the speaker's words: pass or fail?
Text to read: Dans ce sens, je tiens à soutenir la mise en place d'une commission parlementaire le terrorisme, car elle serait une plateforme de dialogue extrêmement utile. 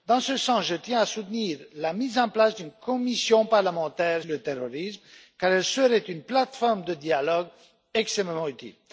pass